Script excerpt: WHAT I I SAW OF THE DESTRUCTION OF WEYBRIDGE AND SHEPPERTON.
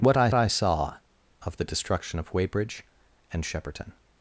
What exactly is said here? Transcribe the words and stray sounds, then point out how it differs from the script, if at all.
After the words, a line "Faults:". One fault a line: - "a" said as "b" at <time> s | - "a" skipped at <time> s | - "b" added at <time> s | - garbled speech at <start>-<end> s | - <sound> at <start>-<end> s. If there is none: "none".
WHAT I I SAW OF THE DESTRUCTION OF WEYBRIDGE AND SHEPPERTON.
Faults:
none